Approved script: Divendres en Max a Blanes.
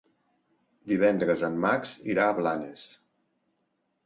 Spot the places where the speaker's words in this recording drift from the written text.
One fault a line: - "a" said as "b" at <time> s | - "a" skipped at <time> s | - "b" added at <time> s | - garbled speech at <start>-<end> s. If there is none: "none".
- "irà" added at 2.1 s